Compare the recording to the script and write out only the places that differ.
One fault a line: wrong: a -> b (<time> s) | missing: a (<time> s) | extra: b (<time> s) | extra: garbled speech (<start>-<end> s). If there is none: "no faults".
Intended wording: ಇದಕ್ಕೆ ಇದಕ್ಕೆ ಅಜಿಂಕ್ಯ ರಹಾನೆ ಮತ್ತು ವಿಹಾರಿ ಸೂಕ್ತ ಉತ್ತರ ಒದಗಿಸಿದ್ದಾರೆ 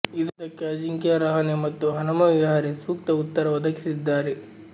missing: ಇದಕ್ಕೆ (0.6 s)
extra: ಹನುಮ (1.9 s)